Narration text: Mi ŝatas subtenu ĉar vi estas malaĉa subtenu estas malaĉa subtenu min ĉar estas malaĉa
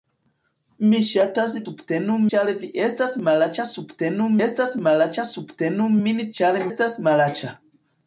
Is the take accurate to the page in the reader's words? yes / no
yes